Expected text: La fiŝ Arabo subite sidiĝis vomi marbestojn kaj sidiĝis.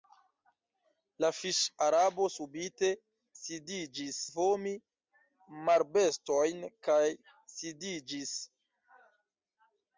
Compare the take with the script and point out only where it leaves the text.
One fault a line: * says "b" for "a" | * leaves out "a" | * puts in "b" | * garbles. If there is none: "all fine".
all fine